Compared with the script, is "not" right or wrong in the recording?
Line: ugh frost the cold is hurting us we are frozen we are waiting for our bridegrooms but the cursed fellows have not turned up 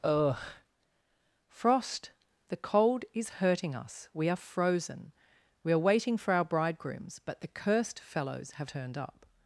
wrong